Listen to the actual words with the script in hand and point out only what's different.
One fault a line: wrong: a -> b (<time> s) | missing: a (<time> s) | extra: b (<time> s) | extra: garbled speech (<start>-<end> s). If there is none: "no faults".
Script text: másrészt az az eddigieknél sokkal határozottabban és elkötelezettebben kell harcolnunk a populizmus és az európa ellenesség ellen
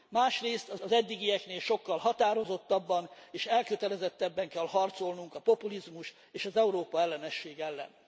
no faults